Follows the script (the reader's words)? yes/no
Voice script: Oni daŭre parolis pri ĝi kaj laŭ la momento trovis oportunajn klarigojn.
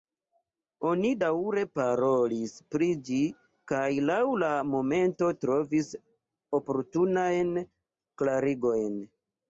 yes